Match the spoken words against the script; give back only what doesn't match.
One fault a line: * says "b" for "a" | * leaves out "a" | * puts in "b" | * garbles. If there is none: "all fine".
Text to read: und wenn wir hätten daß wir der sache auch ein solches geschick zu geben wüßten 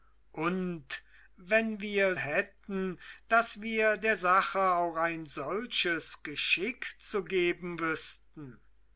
all fine